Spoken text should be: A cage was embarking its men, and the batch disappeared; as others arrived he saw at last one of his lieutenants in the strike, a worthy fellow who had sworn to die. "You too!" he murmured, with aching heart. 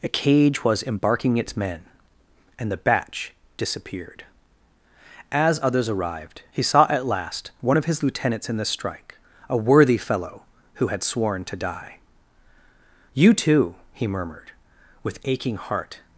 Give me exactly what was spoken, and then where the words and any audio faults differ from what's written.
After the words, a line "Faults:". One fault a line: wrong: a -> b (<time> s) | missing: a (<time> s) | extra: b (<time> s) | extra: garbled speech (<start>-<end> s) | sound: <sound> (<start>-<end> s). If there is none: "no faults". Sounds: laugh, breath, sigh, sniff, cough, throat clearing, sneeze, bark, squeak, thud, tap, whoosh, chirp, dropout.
A cage was embarking its men, and the batch disappeared; as others arrived he saw at last one of his lieutenants in the strike, a worthy fellow who had sworn to die. "You too!" he murmured, with aching heart.
Faults:
no faults